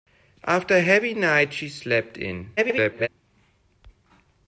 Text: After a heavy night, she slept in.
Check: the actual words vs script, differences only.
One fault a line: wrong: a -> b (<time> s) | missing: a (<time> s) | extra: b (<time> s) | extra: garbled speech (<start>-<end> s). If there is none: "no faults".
extra: garbled speech (2.6-3.1 s)